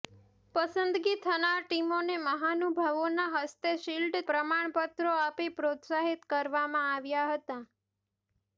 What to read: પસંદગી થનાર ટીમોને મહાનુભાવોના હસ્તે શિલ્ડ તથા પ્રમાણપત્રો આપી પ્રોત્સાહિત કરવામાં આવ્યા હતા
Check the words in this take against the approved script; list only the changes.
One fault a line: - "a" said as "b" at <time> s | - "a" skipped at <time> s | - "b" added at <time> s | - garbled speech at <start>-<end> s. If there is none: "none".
- "તથા" skipped at 4.2 s